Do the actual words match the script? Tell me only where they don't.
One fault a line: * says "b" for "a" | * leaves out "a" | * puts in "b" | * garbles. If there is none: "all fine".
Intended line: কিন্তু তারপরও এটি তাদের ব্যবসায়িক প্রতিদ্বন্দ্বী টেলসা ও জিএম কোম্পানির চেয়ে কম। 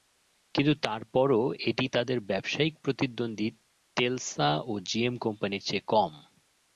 all fine